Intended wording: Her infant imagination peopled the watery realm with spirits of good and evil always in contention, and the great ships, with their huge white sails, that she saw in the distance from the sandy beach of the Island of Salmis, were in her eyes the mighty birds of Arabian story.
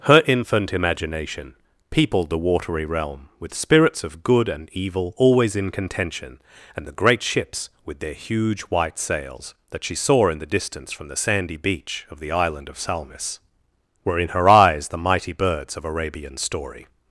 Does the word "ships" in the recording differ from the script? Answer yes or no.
no